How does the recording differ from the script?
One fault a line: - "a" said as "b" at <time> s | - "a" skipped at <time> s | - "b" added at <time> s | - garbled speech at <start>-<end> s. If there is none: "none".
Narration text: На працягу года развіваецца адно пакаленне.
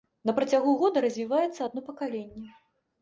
none